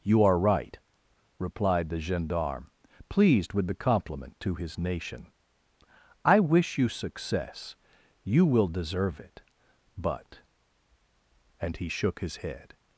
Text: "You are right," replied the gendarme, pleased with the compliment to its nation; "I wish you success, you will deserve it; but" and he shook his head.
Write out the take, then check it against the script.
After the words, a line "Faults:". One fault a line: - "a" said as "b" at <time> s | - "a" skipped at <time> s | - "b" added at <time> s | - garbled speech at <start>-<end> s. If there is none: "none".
"You are right," replied the gendarme, pleased with the compliment to his nation; "I wish you success, you will deserve it; but" and he shook his head.
Faults:
- "its" said as "his" at 4.5 s